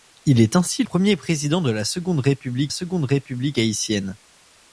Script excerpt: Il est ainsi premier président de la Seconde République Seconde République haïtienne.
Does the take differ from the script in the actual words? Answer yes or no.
no